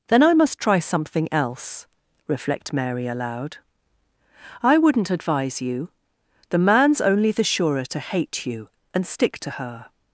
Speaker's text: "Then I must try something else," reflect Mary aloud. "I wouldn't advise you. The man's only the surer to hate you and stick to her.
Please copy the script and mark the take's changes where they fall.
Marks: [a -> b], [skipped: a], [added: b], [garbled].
"Then I must try something else," reflect Mary aloud. "I wouldn't advise you. The man's only the surer to hate you and stick to her.